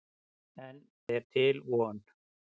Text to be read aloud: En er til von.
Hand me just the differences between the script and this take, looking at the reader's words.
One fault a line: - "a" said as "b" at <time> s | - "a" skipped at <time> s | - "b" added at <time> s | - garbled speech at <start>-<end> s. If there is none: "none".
none